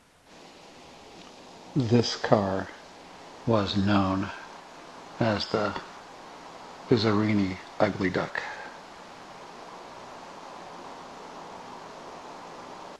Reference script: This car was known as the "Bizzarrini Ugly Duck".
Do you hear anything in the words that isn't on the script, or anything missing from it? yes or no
no